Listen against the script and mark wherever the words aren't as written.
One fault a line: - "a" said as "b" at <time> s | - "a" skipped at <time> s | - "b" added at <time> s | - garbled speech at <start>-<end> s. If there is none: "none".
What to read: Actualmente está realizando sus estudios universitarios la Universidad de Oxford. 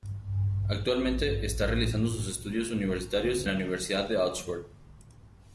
none